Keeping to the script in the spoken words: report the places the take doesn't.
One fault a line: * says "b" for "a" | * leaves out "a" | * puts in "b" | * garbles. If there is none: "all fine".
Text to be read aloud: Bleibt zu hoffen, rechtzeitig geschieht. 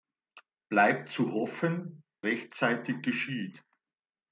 all fine